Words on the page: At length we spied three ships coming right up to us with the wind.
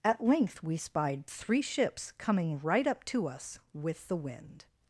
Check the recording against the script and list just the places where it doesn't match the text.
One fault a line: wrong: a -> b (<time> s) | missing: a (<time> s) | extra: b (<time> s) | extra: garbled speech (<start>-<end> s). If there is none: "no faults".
no faults